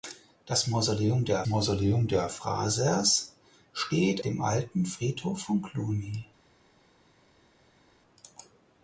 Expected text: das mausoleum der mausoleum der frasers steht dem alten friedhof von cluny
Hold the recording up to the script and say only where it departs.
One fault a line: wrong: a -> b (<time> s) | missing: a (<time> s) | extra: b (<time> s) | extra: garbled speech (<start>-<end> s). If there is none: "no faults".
no faults